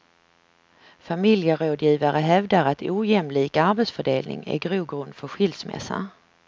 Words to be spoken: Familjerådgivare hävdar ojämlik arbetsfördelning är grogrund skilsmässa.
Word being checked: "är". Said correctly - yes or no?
yes